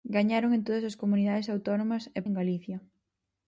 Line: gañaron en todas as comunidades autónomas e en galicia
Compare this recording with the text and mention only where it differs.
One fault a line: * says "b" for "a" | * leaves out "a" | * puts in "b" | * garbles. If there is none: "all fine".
all fine